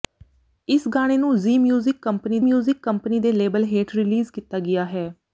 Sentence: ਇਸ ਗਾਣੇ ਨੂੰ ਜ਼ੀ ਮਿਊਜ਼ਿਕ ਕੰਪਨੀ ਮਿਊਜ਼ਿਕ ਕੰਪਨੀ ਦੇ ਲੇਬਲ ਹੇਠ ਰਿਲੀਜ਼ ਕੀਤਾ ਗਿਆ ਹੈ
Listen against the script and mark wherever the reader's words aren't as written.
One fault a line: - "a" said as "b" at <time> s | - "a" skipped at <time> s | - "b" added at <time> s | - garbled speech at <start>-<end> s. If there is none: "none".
none